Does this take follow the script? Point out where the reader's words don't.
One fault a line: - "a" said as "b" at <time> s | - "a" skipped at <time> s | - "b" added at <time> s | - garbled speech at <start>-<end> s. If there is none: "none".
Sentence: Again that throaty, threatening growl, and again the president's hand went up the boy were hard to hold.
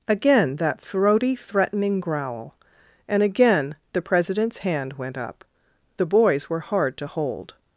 - "boy" said as "boys" at 6.1 s